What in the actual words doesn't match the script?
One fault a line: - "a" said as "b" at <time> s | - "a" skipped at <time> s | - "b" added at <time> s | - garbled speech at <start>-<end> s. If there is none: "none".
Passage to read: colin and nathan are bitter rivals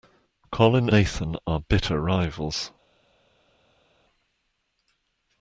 - "and" skipped at 0.9 s